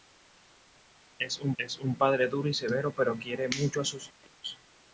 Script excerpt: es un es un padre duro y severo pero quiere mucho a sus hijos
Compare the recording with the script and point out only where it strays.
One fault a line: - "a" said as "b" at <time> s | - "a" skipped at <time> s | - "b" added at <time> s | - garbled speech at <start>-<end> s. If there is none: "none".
none